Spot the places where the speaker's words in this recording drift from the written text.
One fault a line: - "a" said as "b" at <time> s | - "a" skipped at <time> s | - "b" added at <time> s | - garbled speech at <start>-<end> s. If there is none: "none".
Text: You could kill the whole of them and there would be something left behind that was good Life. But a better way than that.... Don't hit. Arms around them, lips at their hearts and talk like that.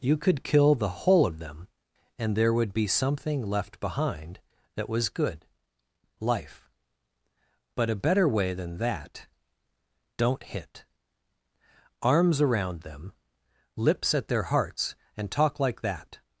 none